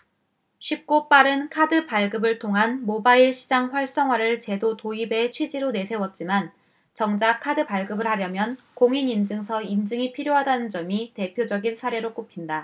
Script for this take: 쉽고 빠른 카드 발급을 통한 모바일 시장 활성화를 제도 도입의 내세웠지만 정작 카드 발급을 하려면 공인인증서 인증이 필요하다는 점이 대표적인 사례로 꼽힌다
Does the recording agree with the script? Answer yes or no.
no